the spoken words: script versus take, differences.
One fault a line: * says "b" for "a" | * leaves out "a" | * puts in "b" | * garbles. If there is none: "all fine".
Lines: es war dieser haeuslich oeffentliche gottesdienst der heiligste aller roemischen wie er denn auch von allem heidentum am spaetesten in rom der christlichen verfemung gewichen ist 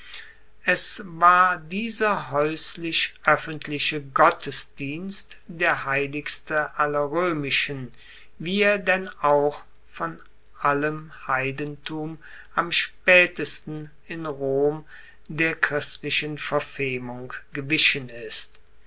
all fine